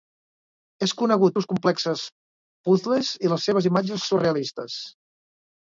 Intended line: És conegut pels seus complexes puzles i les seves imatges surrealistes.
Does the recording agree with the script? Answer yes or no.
no